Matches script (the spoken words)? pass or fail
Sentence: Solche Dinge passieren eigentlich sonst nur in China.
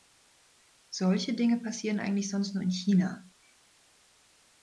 pass